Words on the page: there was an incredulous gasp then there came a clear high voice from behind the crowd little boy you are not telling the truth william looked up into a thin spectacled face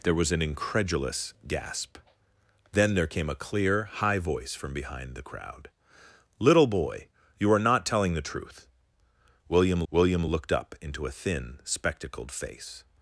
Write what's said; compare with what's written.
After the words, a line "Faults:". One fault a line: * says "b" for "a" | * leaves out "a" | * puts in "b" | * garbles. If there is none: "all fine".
there was an incredulous gasp then there came a clear high voice from behind the crowd little boy you are not telling the truth william william looked up into a thin spectacled face
Faults:
* puts in "william"